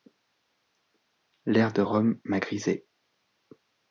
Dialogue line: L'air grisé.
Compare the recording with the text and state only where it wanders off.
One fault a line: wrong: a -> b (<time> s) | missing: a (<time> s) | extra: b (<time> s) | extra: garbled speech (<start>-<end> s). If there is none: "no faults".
extra: de Rome m'a (1.7 s)